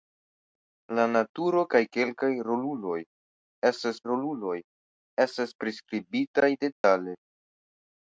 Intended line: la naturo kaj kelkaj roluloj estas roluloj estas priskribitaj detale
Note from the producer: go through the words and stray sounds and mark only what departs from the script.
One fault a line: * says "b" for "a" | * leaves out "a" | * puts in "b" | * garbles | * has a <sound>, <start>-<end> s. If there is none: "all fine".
* has a dropout, 6.7-6.8 s